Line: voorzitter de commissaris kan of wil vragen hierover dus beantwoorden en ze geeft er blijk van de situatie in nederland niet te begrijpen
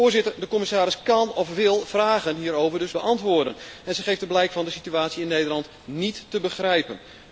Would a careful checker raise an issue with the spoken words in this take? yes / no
no